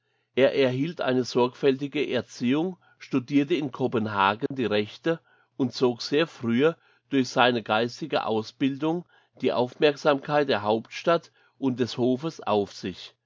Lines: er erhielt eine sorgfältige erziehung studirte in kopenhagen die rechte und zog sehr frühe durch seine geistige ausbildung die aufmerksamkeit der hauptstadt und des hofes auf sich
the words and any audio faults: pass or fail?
fail